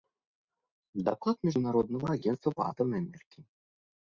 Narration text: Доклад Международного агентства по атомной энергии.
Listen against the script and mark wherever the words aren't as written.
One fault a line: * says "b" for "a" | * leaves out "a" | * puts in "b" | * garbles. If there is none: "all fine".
all fine